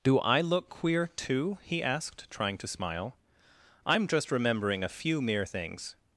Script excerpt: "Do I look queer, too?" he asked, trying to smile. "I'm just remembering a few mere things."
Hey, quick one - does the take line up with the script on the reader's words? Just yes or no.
yes